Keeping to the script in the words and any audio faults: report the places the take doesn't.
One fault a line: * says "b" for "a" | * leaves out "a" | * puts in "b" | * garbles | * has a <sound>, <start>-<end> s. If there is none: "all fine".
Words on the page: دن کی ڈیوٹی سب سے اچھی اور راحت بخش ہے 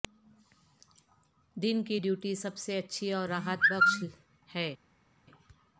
all fine